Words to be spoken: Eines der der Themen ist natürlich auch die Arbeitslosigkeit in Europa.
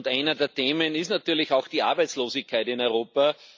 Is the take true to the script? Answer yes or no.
no